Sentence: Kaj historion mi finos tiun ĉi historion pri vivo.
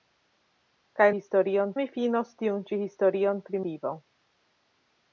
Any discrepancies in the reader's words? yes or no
no